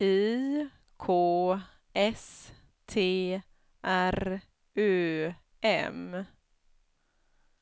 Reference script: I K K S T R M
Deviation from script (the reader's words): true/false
true